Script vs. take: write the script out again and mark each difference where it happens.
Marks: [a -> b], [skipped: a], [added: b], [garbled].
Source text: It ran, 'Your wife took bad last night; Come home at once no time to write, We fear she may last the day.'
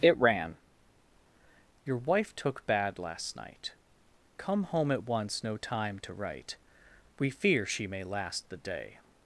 It ran, 'Your wife took bad last night; Come home at once no time to write, We fear she may last the day.'